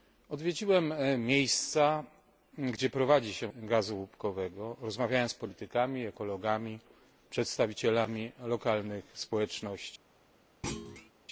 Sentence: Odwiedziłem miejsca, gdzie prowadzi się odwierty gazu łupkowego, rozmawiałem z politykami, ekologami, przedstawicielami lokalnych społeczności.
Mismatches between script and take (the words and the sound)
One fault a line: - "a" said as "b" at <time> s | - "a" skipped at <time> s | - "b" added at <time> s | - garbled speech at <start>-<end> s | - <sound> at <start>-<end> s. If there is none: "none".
- "odwierty" skipped at 3.5 s
- thud at 10.6-11.1 s